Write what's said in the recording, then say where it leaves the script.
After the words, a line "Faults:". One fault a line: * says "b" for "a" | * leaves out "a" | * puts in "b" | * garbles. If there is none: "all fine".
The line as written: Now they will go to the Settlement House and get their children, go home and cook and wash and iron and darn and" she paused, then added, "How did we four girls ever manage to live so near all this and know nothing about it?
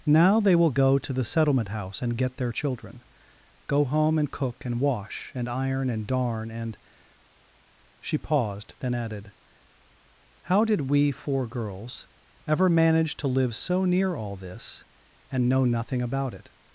Now they will go to the Settlement House and get their children, go home and cook and wash and iron and darn and" she paused, then added, "How did we four girls ever manage to live so near all this and know nothing about it?
Faults:
all fine